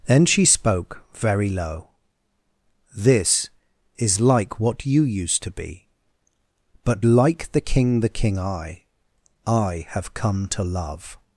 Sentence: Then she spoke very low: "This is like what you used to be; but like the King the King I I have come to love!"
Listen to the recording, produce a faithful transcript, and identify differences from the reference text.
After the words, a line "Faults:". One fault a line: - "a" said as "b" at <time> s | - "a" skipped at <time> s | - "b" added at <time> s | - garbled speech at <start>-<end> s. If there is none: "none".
Then she spoke very low: "This is like what you used to be; but like the King the King I I have come to love!"
Faults:
none